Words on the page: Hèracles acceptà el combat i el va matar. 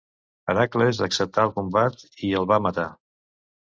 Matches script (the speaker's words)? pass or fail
pass